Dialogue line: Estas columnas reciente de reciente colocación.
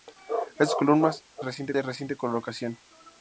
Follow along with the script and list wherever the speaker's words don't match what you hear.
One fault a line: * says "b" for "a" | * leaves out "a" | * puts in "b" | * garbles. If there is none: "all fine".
all fine